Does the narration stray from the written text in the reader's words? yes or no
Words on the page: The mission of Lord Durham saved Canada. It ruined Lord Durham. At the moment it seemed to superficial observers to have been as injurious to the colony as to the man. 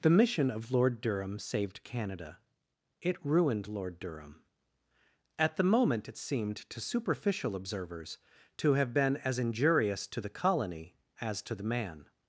no